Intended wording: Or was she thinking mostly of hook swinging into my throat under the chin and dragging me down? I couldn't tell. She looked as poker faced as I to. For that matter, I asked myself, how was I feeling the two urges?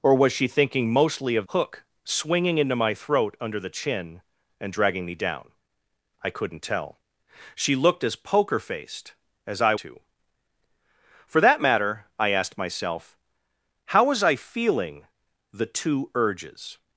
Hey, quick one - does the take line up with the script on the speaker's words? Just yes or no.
yes